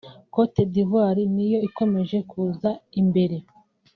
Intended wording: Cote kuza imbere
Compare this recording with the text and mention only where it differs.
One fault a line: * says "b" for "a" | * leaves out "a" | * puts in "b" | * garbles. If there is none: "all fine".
* puts in "d'Ivoire niyo ikomeje"